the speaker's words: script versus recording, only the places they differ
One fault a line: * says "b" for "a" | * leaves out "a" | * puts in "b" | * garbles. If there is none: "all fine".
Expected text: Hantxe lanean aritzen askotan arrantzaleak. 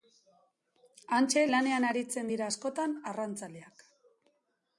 * puts in "dira"